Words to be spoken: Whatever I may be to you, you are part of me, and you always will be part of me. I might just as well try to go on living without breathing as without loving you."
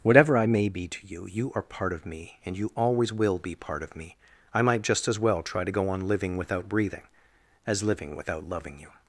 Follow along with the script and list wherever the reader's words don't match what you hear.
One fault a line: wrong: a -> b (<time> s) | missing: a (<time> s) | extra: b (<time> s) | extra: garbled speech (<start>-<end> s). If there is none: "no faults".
extra: living (7.8 s)